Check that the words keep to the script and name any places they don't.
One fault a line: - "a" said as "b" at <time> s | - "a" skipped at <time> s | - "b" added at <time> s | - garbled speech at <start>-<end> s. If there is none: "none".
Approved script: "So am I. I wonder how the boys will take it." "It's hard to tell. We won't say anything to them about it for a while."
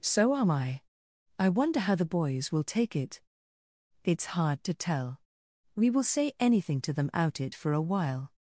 - "won't" said as "will" at 5.9 s
- "about" said as "out" at 7.1 s